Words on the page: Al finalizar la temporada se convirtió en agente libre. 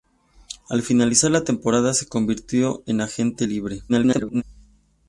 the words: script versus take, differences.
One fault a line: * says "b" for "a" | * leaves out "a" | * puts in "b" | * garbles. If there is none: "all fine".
* garbles